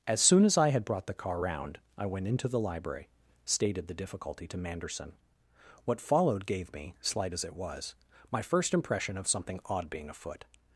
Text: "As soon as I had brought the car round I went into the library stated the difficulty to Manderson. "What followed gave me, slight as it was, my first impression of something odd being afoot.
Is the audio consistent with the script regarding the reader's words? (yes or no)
yes